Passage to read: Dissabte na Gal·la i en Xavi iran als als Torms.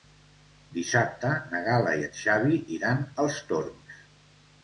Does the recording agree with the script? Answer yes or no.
no